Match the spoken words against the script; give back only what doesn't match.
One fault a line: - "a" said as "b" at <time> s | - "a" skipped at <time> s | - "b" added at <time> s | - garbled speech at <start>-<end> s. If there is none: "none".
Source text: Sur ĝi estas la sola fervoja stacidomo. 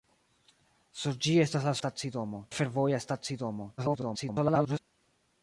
- "sola" said as "stacidomo" at 1.8 s
- garbled speech at 3.8-4.8 s